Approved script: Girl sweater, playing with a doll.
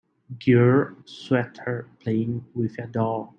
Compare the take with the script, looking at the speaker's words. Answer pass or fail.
pass